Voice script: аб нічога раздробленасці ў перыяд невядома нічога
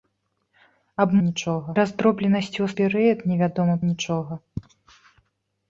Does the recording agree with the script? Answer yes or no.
yes